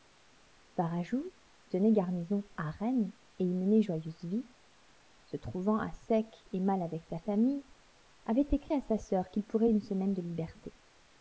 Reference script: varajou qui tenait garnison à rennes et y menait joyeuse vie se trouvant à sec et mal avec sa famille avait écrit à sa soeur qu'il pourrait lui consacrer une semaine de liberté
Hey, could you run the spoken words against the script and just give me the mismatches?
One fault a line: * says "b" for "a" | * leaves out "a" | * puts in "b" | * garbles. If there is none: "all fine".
* leaves out "qui"
* leaves out "lui consacrer"